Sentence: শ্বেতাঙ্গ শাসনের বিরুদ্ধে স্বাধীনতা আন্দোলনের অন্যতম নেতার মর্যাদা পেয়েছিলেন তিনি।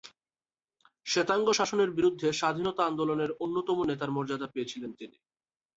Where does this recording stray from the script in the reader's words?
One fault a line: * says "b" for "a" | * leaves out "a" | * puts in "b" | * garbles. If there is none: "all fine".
all fine